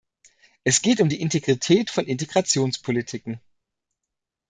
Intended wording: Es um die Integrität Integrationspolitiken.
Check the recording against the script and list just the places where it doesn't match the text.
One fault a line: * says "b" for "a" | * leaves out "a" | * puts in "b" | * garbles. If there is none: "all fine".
* puts in "geht"
* puts in "von"